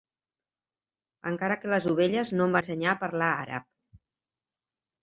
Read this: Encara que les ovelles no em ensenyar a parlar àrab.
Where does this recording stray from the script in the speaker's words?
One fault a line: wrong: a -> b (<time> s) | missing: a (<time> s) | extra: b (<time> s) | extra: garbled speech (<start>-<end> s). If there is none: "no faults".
no faults